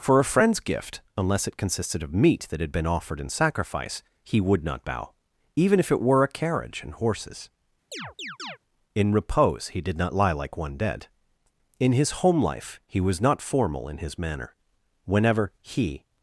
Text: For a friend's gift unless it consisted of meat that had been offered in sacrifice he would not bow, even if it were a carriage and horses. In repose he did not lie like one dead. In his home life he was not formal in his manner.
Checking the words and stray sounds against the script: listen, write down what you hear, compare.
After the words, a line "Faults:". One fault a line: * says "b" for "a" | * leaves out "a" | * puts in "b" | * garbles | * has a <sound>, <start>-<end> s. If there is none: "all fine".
For a friend's gift unless it consisted of meat that had been offered in sacrifice he would not bow, even if it were a carriage and horses. In repose he did not lie like one dead. In his home life he was not formal in his manner. Whenever he
Faults:
* has a chirp, 7.9-8.6 s
* puts in "Whenever he"